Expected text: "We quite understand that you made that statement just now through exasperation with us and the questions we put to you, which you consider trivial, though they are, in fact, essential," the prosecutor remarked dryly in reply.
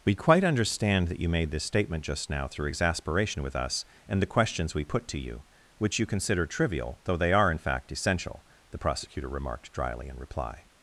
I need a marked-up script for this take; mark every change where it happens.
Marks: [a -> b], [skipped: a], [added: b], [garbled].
"We quite understand that you made [that -> this] statement just now through exasperation with us and the questions we put to you, which you consider trivial, though they are, in fact, essential," the prosecutor remarked dryly in reply.